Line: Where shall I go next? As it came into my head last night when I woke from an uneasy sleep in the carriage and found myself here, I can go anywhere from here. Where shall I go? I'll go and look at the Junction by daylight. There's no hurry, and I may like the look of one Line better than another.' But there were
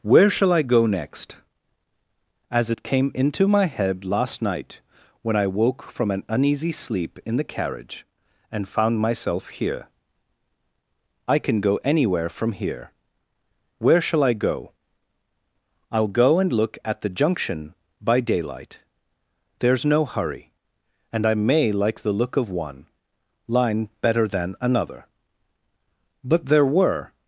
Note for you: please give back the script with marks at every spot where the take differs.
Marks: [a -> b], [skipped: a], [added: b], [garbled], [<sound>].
Where shall I go next? As it came into my head last night when I woke from an uneasy sleep in the carriage and found myself here, I can go anywhere from here. Where shall I go? I'll go and look at the Junction by daylight. There's no hurry, and I may like the look of one Line better than another.' But there were